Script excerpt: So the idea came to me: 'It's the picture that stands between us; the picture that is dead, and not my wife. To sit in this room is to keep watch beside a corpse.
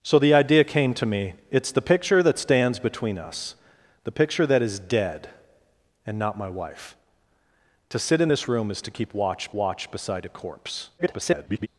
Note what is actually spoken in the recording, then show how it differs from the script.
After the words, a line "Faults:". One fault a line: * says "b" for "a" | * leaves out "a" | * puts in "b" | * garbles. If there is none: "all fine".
So the idea came to me: 'It's the picture that stands between us; the picture that is dead, and not my wife. To sit in this room is to keep watch watch beside a corpse. [garbled]
Faults:
* puts in "watch"
* garbles